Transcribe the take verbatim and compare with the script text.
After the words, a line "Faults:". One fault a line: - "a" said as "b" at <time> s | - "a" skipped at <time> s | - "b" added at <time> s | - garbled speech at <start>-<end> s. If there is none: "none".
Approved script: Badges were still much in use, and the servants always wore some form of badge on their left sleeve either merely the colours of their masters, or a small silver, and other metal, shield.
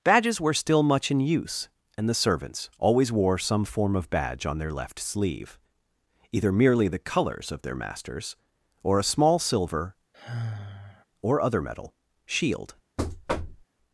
Badges were still much in use, and the servants always wore some form of badge on their left sleeve either merely the colours of their masters, or a small silver, or other metal, shield.
Faults:
- "and" said as "or" at 11.2 s